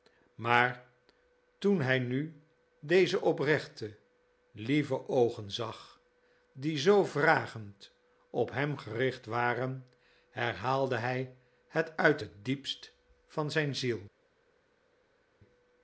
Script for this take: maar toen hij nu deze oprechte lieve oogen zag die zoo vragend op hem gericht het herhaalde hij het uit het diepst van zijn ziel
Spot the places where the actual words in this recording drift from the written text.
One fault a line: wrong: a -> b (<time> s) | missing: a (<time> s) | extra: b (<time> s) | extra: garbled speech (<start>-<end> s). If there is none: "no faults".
wrong: het -> waren (9.2 s)